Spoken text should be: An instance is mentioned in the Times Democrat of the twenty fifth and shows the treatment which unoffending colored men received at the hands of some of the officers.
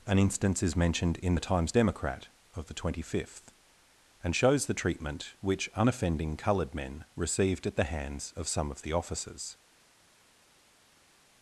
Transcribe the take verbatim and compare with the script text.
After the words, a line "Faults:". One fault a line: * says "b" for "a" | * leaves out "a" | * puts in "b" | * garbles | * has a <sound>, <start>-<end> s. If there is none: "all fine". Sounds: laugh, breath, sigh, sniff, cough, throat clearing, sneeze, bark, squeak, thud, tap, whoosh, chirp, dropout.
An instance is mentioned in the Times Democrat of the twenty fifth and shows the treatment which unoffending colored men received at the hands of some of the officers.
Faults:
all fine